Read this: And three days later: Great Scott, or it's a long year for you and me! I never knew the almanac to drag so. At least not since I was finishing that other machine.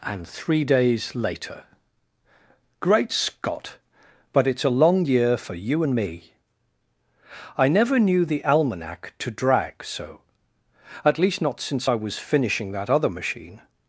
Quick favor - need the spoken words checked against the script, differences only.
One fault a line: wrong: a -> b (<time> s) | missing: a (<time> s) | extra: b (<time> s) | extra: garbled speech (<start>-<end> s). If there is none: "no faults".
wrong: or -> but (4.3 s)